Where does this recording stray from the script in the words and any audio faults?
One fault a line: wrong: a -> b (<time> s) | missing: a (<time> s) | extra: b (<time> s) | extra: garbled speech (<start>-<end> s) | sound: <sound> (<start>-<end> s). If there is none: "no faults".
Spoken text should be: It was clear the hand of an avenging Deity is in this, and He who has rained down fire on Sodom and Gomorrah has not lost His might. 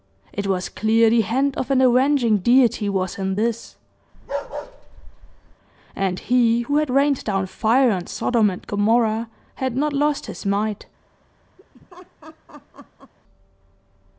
wrong: is -> was (2.9 s)
sound: bark (4.1-5.6 s)
wrong: has -> had (6.8 s)
wrong: has -> had (9.6 s)
sound: laugh (11.6-13.1 s)